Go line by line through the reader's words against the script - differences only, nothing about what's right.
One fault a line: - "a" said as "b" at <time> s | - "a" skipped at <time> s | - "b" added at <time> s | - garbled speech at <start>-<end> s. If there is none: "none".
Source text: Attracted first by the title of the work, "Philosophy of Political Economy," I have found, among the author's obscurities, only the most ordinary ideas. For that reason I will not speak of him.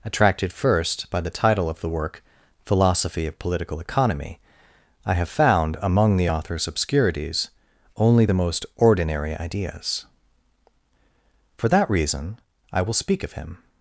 - "not" skipped at 12.9 s